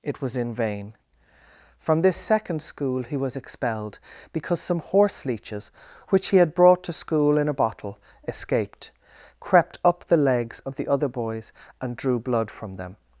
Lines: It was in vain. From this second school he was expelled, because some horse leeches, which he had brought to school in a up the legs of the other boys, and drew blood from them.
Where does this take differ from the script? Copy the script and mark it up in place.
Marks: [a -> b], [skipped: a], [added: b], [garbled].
It was in vain. From this second school he was expelled, because some horse leeches, which he had brought to school in a [added: bottle escaped crept] up the legs of the other boys, and drew blood from them.